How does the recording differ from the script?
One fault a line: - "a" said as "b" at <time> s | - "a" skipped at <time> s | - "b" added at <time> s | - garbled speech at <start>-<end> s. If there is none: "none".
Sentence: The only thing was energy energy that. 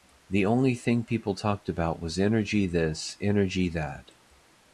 - "people talked about" added at 1.0 s
- "this" added at 2.6 s